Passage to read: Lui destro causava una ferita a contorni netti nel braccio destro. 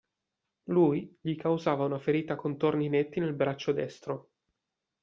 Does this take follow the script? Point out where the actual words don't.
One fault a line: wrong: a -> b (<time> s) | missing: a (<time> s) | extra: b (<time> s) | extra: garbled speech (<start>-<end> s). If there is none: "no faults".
wrong: destro -> gli (1.2 s)